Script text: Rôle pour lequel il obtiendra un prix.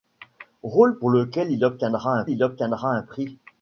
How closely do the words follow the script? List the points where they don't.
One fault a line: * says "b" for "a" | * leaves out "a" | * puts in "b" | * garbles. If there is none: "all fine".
* puts in "il obtiendra un"